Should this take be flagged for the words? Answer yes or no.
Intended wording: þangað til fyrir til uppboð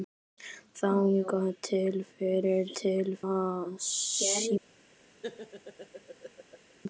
no